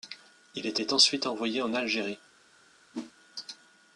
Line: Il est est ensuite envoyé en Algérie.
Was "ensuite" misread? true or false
false